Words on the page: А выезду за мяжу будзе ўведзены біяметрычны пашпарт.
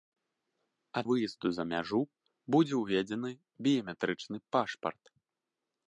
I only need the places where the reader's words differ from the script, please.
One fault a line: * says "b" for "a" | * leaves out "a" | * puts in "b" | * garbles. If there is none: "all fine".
all fine